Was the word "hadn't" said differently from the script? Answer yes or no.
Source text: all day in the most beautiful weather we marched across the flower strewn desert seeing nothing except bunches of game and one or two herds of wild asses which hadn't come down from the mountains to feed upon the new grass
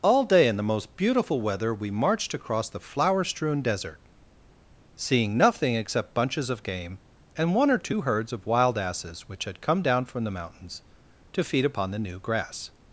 yes